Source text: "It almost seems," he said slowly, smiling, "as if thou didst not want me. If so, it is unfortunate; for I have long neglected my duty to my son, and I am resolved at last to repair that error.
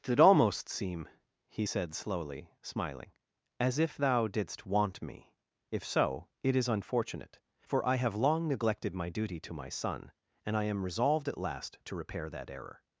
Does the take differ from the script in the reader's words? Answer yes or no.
yes